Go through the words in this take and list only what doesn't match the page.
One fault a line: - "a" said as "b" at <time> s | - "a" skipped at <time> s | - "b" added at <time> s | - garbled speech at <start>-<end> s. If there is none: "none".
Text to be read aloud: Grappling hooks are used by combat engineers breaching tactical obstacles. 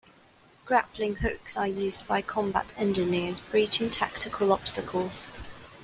none